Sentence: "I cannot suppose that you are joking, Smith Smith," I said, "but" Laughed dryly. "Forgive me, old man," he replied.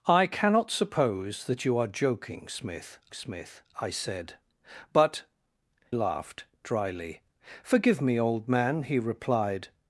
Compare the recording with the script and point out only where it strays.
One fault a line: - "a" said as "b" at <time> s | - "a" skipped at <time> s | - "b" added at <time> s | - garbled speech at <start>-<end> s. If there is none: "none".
none